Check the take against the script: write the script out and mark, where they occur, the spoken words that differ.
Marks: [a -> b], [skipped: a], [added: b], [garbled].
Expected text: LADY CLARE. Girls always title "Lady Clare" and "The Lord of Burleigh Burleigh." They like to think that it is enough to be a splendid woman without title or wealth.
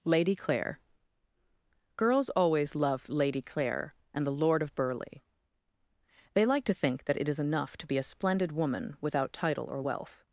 LADY CLARE. Girls always [title -> love] "Lady Clare" and "The Lord of Burleigh [skipped: Burleigh."] They like to think that it is enough to be a splendid woman without title or wealth.